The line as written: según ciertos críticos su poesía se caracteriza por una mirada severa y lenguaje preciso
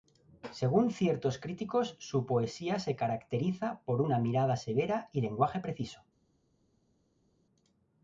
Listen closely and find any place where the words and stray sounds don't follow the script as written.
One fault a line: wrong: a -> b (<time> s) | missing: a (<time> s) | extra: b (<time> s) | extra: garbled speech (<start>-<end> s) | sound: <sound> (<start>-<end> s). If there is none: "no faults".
no faults